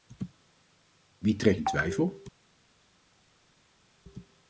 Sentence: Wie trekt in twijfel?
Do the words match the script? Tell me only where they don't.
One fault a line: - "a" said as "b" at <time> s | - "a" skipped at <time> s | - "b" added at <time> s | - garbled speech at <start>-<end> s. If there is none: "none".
none